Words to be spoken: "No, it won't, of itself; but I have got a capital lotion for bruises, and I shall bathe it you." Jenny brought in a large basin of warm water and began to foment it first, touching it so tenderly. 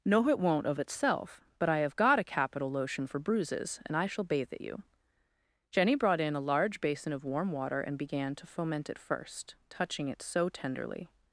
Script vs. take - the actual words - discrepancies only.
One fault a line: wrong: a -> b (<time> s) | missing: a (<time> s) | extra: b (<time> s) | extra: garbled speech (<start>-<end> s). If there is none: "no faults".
no faults